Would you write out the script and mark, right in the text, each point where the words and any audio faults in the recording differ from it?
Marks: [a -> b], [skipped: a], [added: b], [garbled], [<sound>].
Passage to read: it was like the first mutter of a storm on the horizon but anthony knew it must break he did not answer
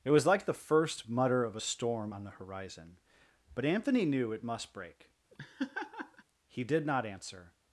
it was like the first mutter of a storm on the horizon but anthony knew it must break [laugh] he did not answer